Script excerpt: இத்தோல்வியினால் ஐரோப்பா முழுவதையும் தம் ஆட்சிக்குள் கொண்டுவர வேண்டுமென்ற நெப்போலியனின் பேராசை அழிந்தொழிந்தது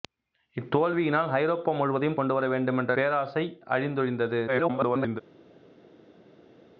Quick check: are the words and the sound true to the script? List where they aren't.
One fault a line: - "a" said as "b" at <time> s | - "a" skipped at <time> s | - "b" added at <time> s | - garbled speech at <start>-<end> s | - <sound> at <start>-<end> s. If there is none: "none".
- "தம் ஆட்சிக்குள்" skipped at 2.2 s
- "நெப்போலியனின்" skipped at 2.9 s
- garbled speech at 4.5-5.2 s